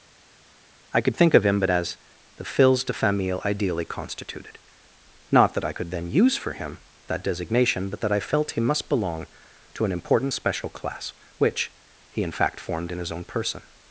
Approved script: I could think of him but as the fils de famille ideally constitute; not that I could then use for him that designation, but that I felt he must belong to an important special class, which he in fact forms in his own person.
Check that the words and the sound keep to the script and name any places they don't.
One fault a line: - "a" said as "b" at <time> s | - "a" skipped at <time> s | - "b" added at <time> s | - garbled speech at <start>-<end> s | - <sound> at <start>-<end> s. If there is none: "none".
- "constitute" said as "constituted" at 3.8 s
- "forms" said as "formed" at 12.6 s